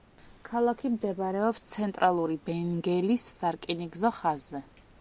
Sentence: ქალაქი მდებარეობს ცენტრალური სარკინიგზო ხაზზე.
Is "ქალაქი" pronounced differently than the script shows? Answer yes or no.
no